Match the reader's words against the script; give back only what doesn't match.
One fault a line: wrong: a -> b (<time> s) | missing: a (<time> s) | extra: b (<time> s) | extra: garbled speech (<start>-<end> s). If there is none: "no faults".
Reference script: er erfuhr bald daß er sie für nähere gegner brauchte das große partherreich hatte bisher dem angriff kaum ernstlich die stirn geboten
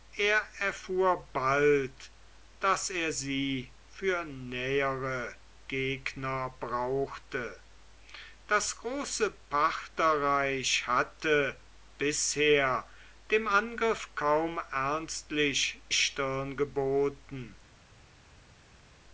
missing: die (15.8 s)